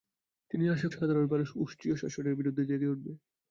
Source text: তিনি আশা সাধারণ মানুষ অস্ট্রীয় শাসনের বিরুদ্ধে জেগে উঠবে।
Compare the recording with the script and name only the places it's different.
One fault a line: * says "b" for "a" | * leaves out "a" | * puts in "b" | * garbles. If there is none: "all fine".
all fine